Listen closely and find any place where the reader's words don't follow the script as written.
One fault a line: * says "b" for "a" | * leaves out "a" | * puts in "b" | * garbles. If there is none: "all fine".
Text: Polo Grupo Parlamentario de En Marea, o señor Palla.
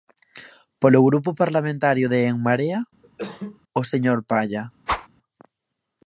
all fine